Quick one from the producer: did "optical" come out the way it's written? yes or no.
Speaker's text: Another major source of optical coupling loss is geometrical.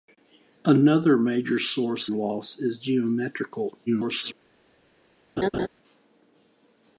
no